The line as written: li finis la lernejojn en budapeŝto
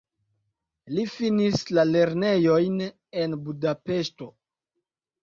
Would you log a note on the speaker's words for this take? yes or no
no